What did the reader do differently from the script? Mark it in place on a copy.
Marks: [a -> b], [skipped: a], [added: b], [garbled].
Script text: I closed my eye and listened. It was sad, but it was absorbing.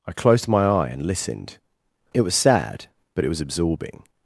I closed my eye and listened. It was sad, but it was absorbing.